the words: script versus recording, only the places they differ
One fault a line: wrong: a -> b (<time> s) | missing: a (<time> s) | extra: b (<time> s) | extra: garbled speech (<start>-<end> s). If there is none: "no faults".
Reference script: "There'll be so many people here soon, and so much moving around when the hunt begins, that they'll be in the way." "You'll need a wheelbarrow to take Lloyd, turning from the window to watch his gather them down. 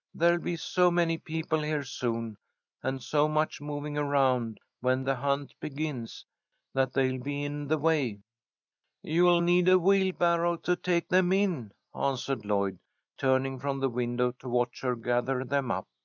extra: them in answered (11.1 s)
wrong: his -> her (14.8 s)
wrong: down -> up (15.7 s)